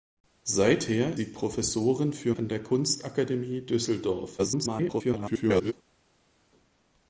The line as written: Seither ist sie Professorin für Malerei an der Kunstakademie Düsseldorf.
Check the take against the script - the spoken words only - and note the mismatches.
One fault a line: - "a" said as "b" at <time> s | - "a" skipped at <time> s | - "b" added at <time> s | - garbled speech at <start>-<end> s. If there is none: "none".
- "ist" skipped at 1.1 s
- "Malerei" skipped at 2.3 s
- garbled speech at 4.4-5.7 s